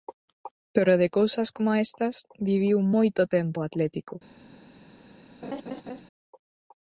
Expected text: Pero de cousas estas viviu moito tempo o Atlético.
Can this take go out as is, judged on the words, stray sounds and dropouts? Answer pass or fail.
fail